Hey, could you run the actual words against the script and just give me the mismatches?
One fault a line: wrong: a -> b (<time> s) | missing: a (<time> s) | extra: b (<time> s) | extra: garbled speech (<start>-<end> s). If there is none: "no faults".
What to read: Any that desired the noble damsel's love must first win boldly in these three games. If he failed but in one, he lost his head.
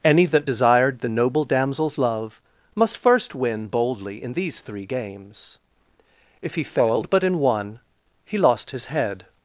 no faults